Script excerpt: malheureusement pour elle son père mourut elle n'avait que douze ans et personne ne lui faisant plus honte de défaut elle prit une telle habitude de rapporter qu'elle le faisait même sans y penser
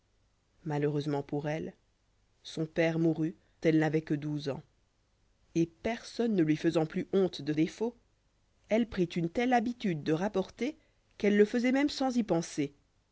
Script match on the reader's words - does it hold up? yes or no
yes